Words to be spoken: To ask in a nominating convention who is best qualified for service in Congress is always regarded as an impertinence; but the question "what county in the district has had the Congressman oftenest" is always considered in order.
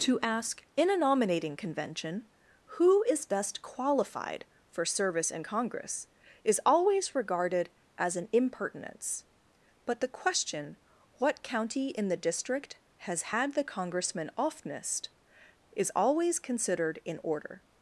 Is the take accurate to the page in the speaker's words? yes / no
yes